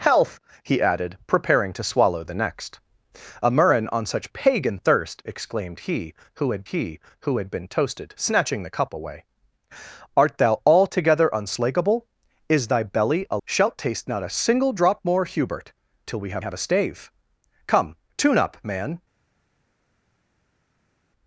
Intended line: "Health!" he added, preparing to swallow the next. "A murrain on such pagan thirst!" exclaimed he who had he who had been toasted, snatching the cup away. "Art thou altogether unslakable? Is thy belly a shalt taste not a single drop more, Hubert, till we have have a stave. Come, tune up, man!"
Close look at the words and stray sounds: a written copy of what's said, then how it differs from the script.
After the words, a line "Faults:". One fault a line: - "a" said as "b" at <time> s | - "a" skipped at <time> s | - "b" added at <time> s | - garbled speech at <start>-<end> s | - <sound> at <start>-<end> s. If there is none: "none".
"Health!" he added, preparing to swallow the next. "A murrain on such pagan thirst!" exclaimed he who had he who had been toasted, snatching the cup away. "Art thou altogether unslakable? Is thy belly a shalt taste not a single drop more, Hubert, till we have have a stave. Come, tune up, man!"
Faults:
none